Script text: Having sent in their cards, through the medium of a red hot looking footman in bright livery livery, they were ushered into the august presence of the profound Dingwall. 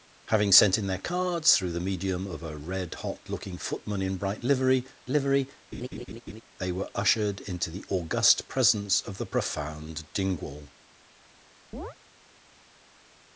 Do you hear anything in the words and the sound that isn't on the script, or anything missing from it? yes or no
yes